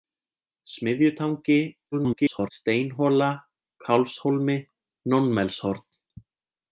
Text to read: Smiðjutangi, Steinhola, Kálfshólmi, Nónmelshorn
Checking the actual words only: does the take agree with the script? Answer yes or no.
no